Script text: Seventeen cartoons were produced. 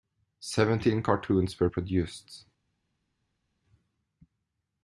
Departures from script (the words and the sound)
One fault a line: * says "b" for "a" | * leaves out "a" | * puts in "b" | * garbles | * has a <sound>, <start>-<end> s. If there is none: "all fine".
all fine